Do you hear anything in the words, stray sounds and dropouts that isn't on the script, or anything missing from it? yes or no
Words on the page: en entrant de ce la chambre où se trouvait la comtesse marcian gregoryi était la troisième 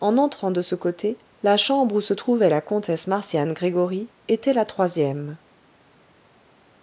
yes